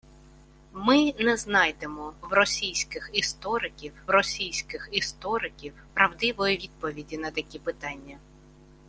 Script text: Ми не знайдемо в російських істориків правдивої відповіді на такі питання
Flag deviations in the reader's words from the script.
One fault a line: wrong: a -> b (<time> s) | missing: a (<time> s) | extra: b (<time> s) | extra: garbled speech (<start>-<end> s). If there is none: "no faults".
extra: російських істориків (4.1 s)